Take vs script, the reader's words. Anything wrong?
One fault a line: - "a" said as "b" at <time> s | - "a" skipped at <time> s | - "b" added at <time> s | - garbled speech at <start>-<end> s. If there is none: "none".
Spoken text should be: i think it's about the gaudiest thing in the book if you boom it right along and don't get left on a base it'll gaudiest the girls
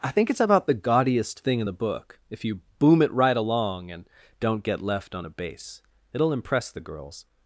- "gaudiest" said as "impress" at 6.3 s